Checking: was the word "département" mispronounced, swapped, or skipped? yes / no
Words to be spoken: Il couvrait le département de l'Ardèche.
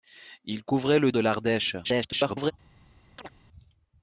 yes